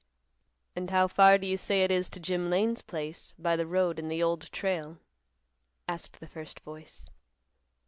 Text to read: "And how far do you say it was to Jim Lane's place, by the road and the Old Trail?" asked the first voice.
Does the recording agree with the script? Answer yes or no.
no